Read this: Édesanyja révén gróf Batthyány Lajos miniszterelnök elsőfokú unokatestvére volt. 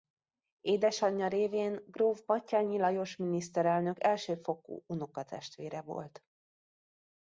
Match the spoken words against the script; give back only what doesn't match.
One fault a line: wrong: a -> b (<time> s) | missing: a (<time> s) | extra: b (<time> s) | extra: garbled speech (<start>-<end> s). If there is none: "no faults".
no faults